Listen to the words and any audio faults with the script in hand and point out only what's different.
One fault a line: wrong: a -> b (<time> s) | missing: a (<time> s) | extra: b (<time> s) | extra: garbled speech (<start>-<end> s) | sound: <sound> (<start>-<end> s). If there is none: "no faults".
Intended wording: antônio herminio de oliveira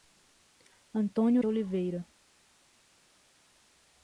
missing: herminio (1.4 s)